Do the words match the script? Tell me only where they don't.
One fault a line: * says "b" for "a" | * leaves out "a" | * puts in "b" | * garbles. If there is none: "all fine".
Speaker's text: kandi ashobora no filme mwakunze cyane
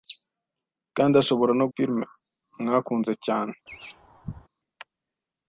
all fine